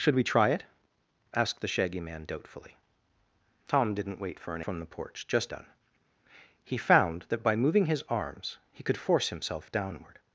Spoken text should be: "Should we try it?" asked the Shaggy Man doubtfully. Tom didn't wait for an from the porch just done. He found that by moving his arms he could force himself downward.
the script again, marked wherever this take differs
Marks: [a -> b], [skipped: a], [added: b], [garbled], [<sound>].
"Should we try it?" asked the Shaggy Man doubtfully. Tom didn't wait for an from the porch just done. He found that by moving his arms he could force himself downward.